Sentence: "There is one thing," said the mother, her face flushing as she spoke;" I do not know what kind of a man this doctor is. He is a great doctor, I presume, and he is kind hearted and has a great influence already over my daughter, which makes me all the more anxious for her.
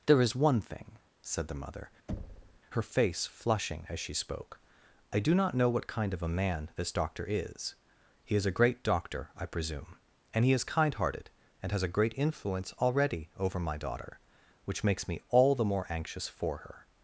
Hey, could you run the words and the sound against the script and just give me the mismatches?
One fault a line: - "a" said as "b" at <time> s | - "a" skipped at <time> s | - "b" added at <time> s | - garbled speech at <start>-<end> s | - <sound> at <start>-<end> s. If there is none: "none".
- thud at 2.1-2.6 s